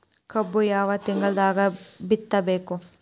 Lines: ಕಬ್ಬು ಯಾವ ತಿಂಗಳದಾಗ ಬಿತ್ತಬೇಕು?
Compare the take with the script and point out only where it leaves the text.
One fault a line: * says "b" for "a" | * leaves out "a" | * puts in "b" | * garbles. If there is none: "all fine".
all fine